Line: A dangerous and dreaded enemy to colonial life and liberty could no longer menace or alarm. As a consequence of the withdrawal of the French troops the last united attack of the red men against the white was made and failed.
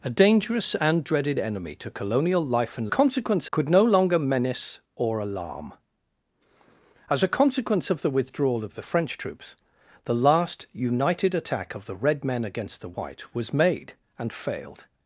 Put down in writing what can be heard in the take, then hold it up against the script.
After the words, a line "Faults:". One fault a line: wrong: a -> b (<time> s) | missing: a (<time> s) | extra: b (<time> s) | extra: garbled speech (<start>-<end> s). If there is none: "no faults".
A dangerous and dreaded enemy to colonial life and consequence could no longer menace or alarm. As a consequence of the withdrawal of the French troops the last united attack of the red men against the white was made and failed.
Faults:
wrong: liberty -> consequence (2.9 s)